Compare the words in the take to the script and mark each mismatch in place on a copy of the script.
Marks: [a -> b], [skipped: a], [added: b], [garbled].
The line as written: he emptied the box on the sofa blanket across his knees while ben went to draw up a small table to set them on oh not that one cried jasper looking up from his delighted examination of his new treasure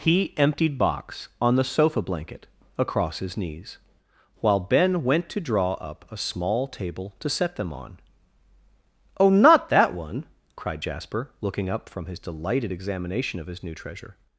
he emptied [skipped: the] box on the sofa blanket across his knees while ben went to draw up a small table to set them on oh not that one cried jasper looking up from his delighted examination of his new treasure